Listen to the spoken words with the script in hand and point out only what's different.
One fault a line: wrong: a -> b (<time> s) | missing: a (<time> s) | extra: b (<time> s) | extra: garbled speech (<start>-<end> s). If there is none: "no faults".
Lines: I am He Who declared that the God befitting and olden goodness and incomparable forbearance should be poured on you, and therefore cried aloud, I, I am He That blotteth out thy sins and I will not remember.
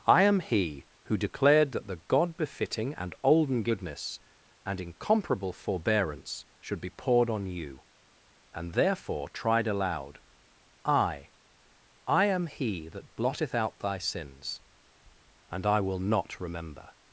wrong: cried -> tried (9.3 s)